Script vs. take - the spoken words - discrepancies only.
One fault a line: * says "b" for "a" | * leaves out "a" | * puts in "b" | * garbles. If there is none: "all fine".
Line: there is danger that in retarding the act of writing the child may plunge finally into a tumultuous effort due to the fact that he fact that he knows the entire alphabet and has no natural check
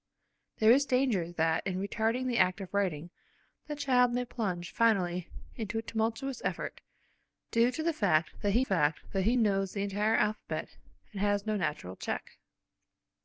all fine